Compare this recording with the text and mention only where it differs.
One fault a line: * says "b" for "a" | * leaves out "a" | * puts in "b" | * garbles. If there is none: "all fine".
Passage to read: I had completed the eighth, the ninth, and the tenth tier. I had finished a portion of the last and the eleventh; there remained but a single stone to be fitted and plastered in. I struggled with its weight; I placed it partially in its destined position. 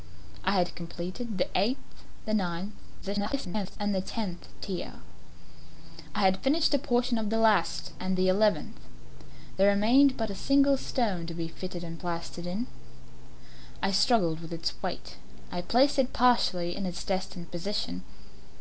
* garbles